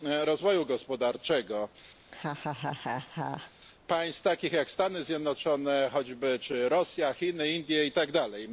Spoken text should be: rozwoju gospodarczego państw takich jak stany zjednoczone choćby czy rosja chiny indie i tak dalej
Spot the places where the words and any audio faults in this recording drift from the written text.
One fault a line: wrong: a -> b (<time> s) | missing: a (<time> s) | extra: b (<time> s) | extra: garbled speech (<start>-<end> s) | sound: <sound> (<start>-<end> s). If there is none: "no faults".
sound: laugh (2.0-3.5 s)